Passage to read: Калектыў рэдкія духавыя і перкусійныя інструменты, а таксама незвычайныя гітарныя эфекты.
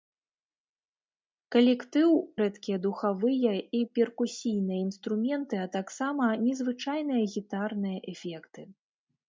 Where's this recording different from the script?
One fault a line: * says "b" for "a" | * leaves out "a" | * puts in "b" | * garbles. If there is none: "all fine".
all fine